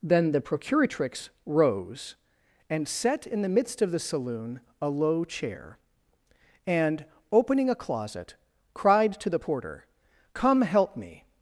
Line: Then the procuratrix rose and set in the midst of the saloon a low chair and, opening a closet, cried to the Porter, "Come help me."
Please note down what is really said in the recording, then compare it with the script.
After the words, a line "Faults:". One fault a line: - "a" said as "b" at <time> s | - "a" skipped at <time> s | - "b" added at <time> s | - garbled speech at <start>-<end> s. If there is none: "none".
Then the procuratrix rose and set in the midst of the saloon a low chair and, opening a closet, cried to the Porter, "Come help me."
Faults:
none